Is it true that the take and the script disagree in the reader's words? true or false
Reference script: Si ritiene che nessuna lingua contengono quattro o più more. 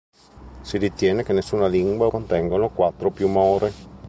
false